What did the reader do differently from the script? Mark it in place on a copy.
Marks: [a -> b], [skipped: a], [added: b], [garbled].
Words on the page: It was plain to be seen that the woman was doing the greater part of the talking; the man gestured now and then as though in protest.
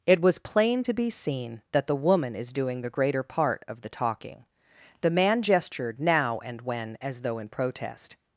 It was plain to be seen that the woman [was -> is] doing the greater part of the talking; the man gestured now and [then -> when] as though in protest.